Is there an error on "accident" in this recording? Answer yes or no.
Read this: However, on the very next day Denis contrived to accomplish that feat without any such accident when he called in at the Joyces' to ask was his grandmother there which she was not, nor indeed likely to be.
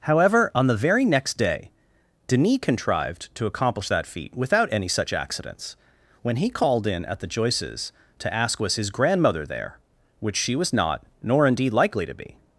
yes